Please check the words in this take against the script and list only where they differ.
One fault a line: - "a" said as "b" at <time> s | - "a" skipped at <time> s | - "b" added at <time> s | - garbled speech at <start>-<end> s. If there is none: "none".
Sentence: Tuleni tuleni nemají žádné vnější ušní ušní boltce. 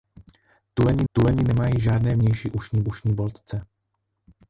none